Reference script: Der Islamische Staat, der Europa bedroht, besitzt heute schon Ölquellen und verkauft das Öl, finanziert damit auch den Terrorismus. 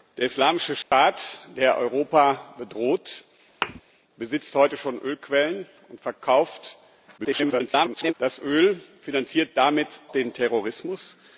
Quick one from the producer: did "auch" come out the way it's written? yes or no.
no